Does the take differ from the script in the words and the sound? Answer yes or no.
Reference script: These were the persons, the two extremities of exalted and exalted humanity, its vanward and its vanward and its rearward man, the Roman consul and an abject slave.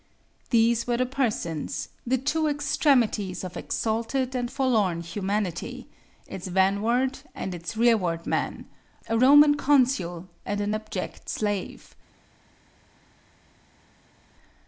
yes